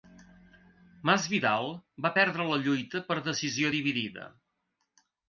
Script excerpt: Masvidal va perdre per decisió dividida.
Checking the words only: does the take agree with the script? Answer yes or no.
no